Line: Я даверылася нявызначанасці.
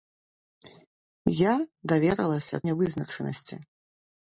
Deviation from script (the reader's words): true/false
false